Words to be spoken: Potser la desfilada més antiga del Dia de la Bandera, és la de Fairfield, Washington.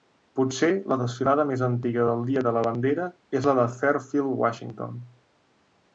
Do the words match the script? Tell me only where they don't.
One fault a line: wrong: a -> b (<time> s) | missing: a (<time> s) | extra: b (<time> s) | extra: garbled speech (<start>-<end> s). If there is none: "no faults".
no faults